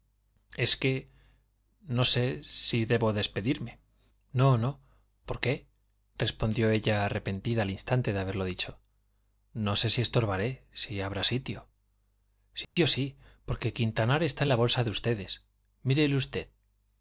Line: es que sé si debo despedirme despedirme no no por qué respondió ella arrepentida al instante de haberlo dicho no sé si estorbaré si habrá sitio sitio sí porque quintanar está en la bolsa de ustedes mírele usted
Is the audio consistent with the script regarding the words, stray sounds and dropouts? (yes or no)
no